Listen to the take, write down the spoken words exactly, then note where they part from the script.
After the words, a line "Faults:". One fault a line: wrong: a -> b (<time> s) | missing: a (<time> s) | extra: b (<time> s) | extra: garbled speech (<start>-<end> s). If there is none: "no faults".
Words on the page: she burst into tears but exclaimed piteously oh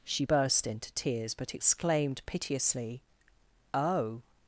she burst into tears but exclaimed piteously oh
Faults:
no faults